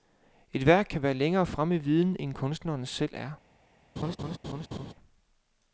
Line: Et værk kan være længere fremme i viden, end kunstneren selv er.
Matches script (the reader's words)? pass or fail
pass